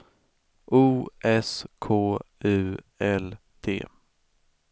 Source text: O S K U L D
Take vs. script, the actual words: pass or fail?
pass